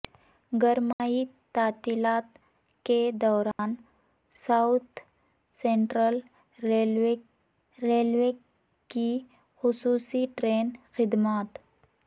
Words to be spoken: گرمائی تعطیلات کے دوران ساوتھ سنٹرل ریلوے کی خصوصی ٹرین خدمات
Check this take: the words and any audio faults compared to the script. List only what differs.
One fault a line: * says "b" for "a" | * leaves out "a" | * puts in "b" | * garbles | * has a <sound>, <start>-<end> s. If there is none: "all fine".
* has a dropout, 0.9-1.0 s
* has a dropout, 3.5-3.6 s
* puts in "ریلوے"